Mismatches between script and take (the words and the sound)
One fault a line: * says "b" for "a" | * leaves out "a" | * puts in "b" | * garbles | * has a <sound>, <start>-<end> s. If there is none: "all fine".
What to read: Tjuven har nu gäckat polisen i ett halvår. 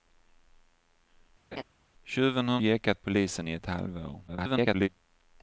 * has a laugh, 1.5-1.6 s
* leaves out "nu"
* garbles